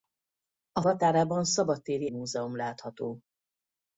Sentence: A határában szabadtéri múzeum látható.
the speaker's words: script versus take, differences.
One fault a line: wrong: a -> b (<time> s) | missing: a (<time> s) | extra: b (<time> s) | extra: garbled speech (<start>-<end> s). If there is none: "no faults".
no faults